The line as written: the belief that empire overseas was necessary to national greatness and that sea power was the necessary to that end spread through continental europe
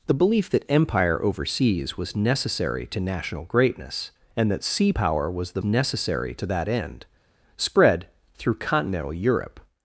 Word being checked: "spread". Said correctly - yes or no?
yes